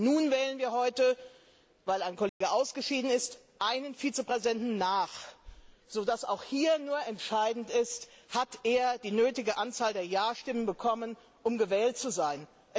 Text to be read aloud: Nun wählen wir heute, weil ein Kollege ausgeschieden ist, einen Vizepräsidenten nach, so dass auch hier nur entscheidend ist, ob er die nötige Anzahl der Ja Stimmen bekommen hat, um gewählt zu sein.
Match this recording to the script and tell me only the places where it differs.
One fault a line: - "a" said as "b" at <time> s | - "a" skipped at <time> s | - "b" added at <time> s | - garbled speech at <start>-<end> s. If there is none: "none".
none